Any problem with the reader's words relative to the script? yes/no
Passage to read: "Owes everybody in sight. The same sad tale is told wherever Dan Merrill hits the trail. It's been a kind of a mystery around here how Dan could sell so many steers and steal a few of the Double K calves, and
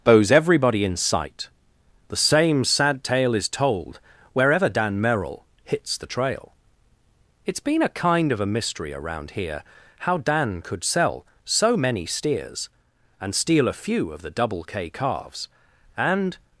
yes